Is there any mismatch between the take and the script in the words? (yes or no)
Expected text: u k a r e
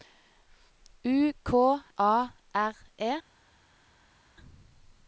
no